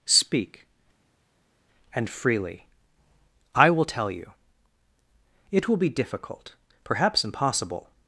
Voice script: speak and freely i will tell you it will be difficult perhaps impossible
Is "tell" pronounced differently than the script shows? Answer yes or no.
no